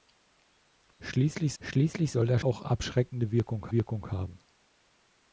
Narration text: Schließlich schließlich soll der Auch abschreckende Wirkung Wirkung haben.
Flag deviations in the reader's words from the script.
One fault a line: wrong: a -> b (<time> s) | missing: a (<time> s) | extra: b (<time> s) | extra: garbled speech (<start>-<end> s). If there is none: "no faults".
no faults